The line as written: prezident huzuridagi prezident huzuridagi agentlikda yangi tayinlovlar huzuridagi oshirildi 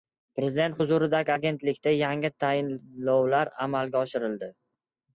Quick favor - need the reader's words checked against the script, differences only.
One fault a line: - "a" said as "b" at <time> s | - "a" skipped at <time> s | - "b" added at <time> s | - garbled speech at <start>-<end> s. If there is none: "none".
- "prezident huzuridagi" skipped at 1.3 s
- "huzuridagi" said as "amalga" at 3.7 s